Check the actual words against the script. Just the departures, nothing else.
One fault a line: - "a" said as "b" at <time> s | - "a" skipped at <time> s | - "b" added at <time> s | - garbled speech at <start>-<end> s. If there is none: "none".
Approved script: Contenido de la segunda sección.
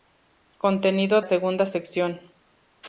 - "de la" skipped at 1.2 s